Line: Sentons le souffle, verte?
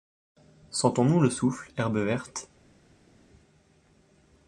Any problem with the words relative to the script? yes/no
yes